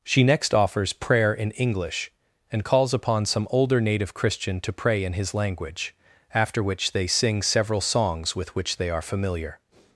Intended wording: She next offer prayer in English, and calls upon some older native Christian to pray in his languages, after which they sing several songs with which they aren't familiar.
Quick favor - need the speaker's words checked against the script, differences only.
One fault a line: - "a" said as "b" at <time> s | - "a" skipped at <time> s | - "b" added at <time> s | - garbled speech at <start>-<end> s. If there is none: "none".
- "offer" said as "offers" at 0.5 s
- "languages" said as "language" at 5.3 s
- "aren't" said as "are" at 8.9 s